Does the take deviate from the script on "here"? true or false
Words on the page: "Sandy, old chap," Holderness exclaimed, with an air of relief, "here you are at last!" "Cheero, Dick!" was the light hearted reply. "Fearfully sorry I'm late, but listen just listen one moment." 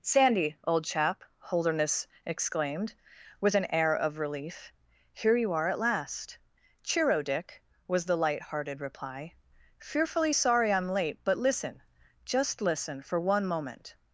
false